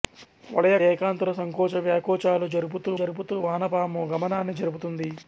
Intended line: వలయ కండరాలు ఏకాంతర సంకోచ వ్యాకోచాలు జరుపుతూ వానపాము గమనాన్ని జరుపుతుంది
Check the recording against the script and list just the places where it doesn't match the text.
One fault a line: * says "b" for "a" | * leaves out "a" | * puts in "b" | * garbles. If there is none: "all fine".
* leaves out "కండరాలు"
* puts in "జరుపుతూ"